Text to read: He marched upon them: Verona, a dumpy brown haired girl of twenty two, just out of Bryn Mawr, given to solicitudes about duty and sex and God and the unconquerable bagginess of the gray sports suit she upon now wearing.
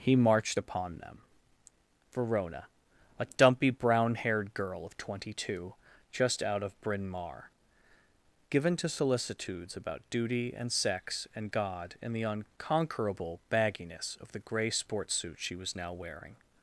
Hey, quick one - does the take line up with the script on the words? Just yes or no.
no